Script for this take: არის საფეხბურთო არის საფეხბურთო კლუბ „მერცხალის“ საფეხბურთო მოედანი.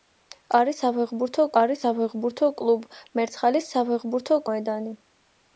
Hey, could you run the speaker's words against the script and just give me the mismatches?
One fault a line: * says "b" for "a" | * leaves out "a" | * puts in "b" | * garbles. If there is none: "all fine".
all fine